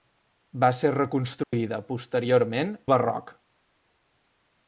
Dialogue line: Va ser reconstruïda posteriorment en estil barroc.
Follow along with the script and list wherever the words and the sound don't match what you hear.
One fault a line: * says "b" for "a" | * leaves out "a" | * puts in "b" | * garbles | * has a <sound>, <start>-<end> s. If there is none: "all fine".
* has a dropout, 1.4-1.5 s
* leaves out "en estil"